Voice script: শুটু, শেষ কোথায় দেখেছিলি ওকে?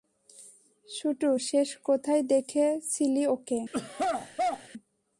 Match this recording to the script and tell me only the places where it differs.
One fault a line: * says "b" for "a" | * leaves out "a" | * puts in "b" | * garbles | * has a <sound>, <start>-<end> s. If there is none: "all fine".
* has a throat clearing, 3.7-4.7 s